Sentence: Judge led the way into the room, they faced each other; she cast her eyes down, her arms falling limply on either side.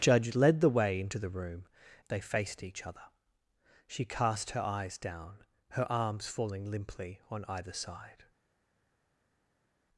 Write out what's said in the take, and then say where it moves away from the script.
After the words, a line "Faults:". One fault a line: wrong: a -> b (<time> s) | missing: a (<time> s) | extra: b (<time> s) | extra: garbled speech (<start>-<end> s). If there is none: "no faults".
Judge led the way into the room, they faced each other; she cast her eyes down, her arms falling limply on either side.
Faults:
no faults